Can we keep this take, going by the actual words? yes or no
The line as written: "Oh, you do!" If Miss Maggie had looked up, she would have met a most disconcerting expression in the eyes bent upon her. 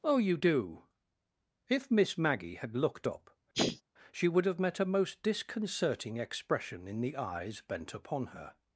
yes